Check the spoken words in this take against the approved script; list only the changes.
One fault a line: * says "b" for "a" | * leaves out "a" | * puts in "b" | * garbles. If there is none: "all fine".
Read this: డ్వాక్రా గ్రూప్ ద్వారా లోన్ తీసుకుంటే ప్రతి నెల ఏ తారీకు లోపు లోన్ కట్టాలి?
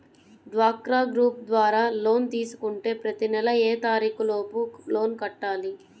all fine